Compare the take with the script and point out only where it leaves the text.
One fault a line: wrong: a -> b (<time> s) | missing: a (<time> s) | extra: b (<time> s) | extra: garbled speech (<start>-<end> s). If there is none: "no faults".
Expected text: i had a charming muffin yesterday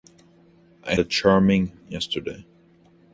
missing: had (0.9 s)
missing: muffin (1.7 s)